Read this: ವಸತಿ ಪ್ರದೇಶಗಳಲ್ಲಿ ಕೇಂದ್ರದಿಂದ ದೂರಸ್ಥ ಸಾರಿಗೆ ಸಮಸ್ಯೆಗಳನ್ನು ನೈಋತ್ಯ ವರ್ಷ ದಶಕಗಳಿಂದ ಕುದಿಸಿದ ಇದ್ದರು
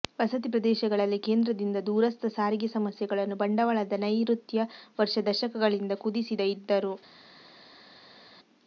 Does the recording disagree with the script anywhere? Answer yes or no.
yes